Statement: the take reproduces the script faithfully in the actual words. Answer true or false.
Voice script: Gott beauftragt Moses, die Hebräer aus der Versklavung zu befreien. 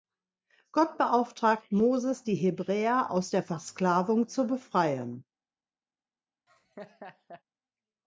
true